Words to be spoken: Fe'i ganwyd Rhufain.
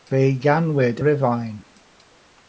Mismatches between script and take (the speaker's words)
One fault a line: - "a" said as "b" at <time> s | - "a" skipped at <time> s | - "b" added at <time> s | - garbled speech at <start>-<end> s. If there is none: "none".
none